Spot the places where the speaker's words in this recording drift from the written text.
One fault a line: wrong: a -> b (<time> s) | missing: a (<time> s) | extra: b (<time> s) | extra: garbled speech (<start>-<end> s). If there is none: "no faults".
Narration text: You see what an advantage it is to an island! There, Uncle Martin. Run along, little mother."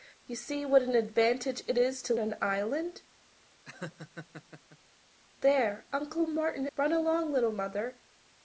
no faults